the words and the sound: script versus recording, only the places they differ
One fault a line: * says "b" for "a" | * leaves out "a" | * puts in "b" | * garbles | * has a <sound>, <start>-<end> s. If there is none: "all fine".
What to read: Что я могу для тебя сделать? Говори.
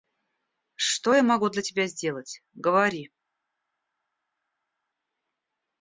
all fine